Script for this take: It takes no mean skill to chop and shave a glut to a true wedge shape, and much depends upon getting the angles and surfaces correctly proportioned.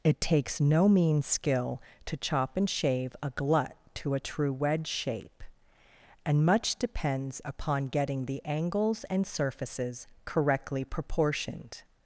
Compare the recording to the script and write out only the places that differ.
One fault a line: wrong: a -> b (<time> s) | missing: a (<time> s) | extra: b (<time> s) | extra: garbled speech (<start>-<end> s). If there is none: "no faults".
no faults